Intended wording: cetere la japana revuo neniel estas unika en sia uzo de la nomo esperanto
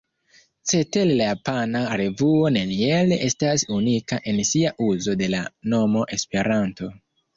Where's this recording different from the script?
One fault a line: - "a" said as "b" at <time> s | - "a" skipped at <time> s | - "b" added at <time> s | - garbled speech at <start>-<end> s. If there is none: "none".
none